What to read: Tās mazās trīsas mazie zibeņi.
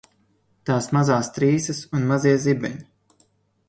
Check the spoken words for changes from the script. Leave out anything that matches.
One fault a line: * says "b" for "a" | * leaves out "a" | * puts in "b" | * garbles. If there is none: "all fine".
* puts in "un"